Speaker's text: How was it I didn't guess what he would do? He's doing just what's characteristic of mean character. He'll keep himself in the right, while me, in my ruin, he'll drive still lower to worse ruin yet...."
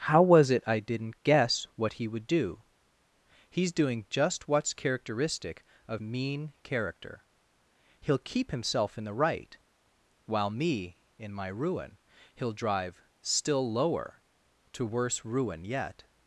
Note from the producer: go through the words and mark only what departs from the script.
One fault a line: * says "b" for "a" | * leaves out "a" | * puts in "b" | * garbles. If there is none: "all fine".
all fine